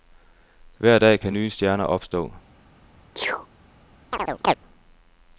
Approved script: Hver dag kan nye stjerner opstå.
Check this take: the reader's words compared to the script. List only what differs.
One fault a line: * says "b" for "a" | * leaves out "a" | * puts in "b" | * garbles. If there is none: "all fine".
all fine